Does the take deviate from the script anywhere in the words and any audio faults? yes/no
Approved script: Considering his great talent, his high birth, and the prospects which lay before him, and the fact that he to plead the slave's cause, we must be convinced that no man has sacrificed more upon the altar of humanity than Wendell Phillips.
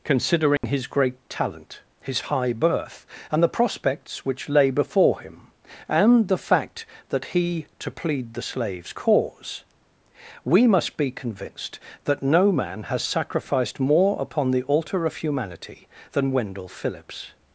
yes